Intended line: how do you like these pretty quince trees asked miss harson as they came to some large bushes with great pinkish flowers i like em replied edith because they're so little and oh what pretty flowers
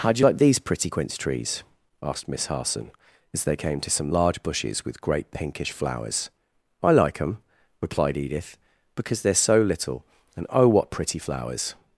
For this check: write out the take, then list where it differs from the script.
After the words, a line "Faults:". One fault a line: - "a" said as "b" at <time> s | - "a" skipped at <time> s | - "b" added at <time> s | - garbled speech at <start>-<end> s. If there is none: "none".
how do you like these pretty quince trees asked miss harson as they came to some large bushes with great pinkish flowers i like em replied edith because they're so little and oh what pretty flowers
Faults:
none